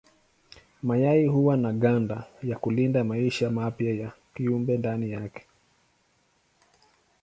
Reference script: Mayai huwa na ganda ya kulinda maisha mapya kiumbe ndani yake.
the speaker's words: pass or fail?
fail